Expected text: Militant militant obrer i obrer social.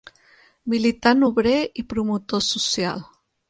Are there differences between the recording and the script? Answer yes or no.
yes